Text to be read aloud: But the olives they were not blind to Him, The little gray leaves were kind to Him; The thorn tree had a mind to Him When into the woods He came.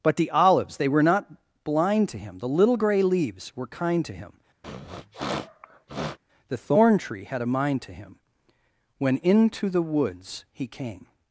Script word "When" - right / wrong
right